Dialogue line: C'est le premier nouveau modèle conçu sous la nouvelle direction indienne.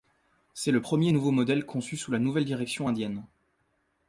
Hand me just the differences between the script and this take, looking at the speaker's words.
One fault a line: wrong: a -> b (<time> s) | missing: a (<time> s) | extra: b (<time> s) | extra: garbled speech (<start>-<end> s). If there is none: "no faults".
no faults